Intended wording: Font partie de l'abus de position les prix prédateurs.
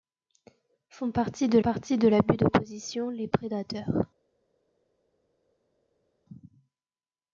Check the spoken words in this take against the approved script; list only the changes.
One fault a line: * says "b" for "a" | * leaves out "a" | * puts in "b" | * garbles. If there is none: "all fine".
* puts in "partie de"
* leaves out "prix"